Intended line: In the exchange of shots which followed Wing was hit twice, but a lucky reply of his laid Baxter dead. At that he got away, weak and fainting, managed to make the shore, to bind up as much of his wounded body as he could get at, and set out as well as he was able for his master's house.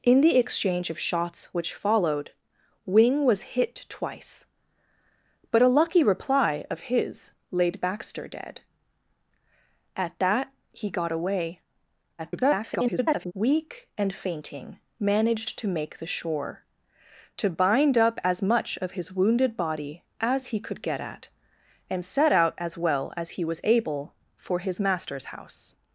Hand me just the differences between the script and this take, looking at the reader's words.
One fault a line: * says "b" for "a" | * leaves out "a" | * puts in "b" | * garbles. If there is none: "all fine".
* garbles